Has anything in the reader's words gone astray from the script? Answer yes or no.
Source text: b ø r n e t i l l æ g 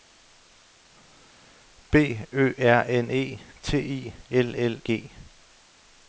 yes